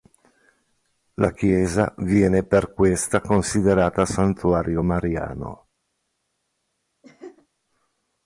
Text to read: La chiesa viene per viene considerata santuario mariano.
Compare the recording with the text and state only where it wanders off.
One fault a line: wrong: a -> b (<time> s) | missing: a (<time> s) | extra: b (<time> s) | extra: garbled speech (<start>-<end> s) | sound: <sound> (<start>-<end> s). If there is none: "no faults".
wrong: viene -> questa (2.7 s)
sound: laugh (7.0-7.5 s)